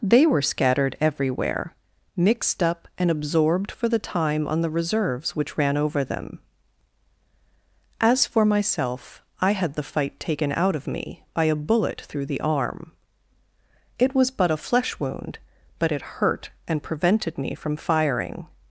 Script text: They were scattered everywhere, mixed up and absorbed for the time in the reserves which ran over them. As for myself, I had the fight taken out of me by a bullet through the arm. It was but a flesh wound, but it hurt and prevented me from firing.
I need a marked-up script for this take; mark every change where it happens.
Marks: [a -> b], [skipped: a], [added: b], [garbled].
They were scattered everywhere, mixed up and absorbed for the time [in -> on] the reserves which ran over them. As for myself, I had the fight taken out of me by a bullet through the arm. It was but a flesh wound, but it hurt and prevented me from firing.